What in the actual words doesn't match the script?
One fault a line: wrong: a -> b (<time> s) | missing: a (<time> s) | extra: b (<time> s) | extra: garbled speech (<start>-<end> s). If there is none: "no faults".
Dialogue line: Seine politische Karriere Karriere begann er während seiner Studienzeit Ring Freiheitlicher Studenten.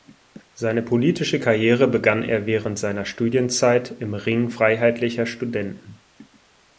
missing: Karriere (1.9 s)
extra: im (4.0 s)